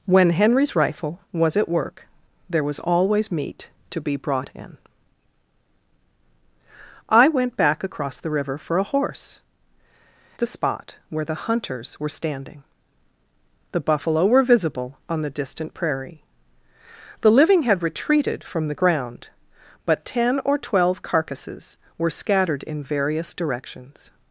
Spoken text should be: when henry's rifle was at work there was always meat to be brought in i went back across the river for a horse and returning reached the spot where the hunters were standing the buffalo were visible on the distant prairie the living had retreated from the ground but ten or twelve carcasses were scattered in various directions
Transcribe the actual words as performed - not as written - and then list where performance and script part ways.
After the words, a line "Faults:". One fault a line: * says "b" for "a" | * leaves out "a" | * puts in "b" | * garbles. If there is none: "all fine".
when henry's rifle was at work there was always meat to be brought in i went back across the river for a horse the spot where the hunters were standing the buffalo were visible on the distant prairie the living had retreated from the ground but ten or twelve carcasses were scattered in various directions
Faults:
* leaves out "and returning reached"